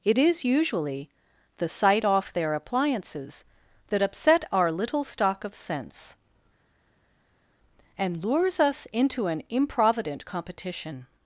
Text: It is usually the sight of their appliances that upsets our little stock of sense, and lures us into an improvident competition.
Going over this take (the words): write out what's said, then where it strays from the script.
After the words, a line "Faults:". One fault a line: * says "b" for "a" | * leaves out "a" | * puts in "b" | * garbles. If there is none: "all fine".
It is usually the sight off their appliances that upset our little stock of sense, and lures us into an improvident competition.
Faults:
* says "off" for "of"
* says "upset" for "upsets"